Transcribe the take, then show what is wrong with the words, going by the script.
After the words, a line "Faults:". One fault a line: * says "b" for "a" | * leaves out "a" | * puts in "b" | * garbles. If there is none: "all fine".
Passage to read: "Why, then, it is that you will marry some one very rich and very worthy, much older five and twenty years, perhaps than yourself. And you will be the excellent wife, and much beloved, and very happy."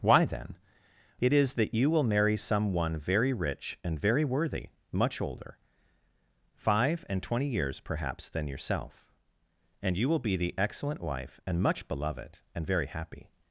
"Why, then, it is that you will marry some one very rich and very worthy, much older five and twenty years, perhaps than yourself. And you will be the excellent wife, and much beloved, and very happy."
Faults:
all fine